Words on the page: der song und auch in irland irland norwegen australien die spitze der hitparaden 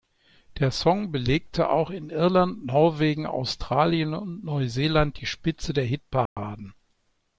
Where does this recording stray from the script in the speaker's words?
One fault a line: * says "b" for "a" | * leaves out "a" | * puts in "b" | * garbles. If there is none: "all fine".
* says "belegte" for "und"
* leaves out "irland"
* puts in "und neuseeland"